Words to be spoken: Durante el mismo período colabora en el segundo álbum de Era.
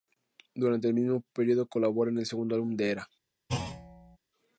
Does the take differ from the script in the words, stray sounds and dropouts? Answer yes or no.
yes